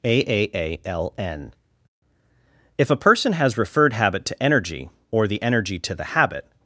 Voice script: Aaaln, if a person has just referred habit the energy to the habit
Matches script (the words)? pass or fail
fail